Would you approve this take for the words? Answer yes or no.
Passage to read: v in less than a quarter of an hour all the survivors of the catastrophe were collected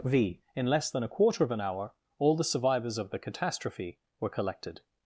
yes